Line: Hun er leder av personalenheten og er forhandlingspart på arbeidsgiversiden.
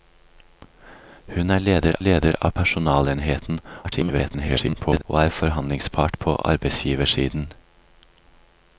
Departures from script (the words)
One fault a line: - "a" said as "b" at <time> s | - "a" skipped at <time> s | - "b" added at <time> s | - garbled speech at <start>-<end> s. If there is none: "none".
- "leder" added at 2.0 s
- garbled speech at 3.8-5.0 s